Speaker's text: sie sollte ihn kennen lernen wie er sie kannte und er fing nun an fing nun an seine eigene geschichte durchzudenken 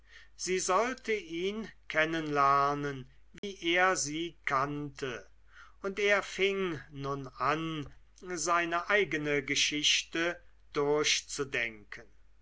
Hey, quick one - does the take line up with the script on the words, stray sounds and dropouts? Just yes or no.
no